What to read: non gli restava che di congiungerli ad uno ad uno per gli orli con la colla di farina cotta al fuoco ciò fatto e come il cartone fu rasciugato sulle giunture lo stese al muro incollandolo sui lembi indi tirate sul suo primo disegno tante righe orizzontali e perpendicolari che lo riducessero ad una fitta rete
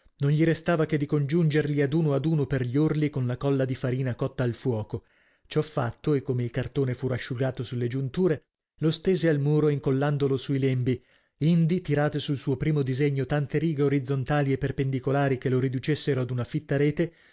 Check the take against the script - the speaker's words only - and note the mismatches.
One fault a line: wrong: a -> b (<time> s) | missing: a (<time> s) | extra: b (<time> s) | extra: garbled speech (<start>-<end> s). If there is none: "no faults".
no faults